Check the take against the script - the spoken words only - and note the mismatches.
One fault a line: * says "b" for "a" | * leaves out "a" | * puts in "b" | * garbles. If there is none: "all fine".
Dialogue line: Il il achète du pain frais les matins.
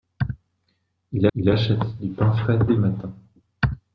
all fine